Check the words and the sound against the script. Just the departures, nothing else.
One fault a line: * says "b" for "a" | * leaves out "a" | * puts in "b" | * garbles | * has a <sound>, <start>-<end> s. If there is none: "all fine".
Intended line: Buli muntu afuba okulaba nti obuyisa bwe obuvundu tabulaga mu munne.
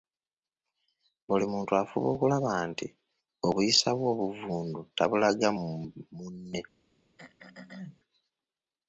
* has a throat clearing, 7.2-8.0 s